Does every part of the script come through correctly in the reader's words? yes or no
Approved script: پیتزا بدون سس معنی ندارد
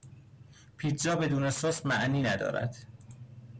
yes